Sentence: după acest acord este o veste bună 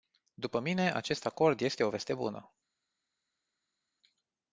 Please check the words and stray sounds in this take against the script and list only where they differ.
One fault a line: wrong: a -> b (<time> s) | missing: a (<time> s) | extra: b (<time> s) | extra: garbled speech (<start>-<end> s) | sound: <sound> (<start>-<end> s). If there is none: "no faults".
extra: mine (0.6 s)